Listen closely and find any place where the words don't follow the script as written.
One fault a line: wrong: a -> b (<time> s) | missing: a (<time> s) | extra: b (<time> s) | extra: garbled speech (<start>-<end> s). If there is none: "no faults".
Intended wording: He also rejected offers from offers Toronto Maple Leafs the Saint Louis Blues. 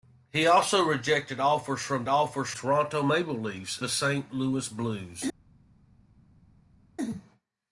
no faults